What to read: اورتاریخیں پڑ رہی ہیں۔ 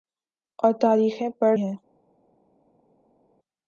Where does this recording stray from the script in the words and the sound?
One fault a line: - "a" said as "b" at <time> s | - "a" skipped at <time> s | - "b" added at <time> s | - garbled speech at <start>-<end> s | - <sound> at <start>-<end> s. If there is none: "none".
- "رہی" skipped at 1.5 s